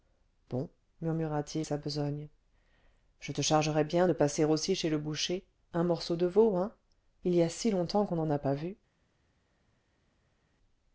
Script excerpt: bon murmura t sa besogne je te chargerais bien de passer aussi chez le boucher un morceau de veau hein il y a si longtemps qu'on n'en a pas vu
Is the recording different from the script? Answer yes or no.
no